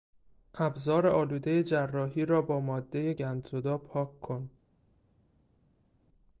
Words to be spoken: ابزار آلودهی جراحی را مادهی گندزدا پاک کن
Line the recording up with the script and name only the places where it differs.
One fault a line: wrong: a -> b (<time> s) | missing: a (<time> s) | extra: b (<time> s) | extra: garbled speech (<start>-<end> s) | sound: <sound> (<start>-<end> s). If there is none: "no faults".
extra: با (2.4 s)